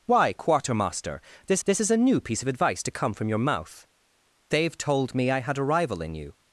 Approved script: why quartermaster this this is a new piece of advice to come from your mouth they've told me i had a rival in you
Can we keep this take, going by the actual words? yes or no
yes